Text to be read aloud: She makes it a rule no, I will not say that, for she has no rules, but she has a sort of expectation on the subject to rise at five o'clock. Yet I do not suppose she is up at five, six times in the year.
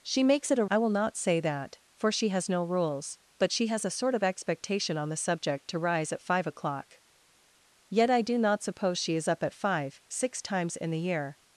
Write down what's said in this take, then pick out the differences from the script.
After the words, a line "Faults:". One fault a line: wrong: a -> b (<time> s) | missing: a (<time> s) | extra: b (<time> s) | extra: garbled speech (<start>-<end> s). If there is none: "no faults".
She makes it a I will not say that, for she has no rules, but she has a sort of expectation on the subject to rise at five o'clock. Yet I do not suppose she is up at five, six times in the year.
Faults:
missing: rule no (0.7 s)